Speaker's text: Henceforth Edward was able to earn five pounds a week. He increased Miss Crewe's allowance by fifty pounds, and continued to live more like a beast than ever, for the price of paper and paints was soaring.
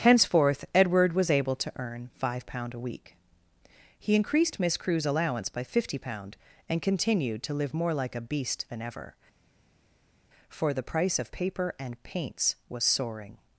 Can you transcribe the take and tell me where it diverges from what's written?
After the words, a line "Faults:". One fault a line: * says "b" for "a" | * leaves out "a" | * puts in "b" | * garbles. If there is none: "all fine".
Henceforth Edward was able to earn five pound a week. He increased Miss Crewe's allowance by fifty pound, and continued to live more like a beast than ever, for the price of paper and paints was soaring.
Faults:
* says "pound" for "pounds"
* says "pound" for "pounds"